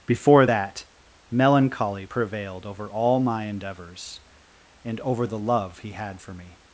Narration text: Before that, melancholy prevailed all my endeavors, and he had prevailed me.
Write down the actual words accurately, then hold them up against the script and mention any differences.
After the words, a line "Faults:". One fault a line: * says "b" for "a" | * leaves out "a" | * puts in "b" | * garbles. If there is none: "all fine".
Before that, melancholy prevailed over all my endeavors, and over the love he had for me.
Faults:
* puts in "over"
* puts in "over the love"
* says "for" for "prevailed"